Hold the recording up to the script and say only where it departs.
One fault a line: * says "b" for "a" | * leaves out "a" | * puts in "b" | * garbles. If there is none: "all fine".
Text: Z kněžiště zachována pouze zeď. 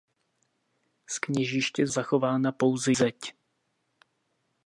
all fine